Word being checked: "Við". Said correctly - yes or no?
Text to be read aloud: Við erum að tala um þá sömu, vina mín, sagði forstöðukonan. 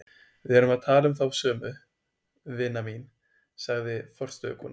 yes